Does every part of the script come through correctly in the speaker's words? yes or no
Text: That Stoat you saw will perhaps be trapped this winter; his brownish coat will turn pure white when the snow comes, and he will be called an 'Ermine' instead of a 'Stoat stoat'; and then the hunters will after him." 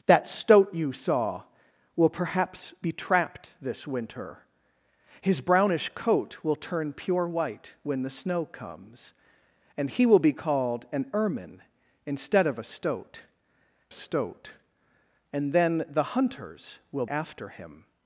yes